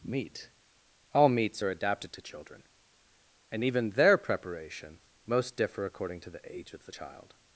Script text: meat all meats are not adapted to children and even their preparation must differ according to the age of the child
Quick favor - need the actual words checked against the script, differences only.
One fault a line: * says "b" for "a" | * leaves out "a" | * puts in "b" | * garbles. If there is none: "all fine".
* leaves out "not"
* says "most" for "must"